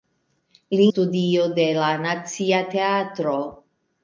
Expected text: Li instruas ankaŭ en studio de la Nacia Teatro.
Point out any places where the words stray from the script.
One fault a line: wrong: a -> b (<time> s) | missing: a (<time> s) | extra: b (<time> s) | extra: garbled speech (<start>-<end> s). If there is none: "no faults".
missing: instruas ankaŭ en (0.8 s)